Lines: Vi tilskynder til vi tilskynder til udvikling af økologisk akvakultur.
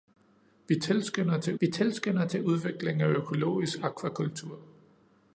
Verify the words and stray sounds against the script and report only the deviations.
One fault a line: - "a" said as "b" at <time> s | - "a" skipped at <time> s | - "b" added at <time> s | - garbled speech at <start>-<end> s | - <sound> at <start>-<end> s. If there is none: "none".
none